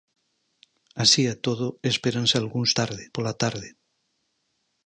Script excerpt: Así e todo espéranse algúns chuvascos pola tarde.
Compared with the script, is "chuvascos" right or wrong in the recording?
wrong